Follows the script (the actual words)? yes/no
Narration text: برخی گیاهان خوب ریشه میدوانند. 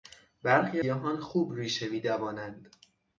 yes